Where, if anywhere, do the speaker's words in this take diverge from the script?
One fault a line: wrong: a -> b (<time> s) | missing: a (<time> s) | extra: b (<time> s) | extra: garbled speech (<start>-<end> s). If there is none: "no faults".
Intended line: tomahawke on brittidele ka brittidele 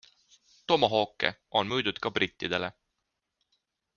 wrong: brittidele -> müüdud (1.7 s)